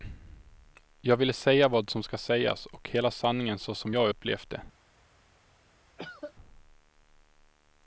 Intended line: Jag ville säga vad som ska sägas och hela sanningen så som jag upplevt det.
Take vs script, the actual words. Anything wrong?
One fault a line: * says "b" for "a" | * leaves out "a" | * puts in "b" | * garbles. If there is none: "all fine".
all fine